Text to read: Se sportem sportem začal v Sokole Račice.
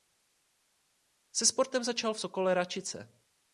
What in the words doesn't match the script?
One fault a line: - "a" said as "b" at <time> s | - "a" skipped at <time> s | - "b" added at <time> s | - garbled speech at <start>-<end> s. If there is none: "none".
- "sportem" skipped at 1.8 s